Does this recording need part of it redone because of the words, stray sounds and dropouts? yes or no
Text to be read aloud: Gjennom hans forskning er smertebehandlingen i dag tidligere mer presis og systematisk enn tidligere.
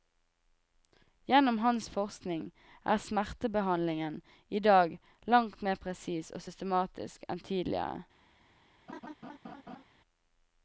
yes